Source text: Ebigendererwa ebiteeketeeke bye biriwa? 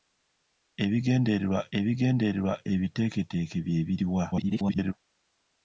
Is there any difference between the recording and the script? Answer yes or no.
yes